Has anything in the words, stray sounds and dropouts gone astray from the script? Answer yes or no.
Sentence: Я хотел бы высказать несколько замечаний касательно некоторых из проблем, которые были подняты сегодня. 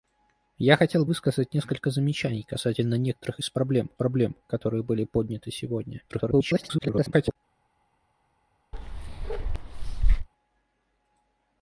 yes